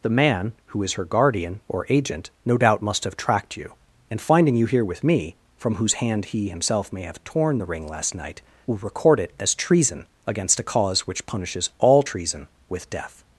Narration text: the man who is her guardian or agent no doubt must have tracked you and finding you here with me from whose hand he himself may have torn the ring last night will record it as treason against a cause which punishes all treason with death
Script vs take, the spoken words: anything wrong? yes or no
no